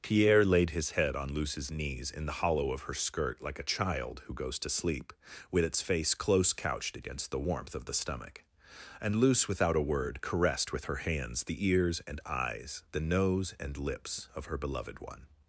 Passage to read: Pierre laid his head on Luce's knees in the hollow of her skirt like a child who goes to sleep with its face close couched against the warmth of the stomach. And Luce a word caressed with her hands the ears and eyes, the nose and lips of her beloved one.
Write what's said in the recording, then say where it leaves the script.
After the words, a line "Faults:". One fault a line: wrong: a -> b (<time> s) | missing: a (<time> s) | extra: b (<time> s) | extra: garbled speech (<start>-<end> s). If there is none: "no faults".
Pierre laid his head on Luce's knees in the hollow of her skirt like a child who goes to sleep with its face close couched against the warmth of the stomach. And Luce without a word caressed with her hands the ears and eyes, the nose and lips of her beloved one.
Faults:
extra: without (9.5 s)